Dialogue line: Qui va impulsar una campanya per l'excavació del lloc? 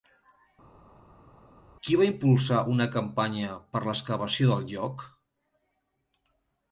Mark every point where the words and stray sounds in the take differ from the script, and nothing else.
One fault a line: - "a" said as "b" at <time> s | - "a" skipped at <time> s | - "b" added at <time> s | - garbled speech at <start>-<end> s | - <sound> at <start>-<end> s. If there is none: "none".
none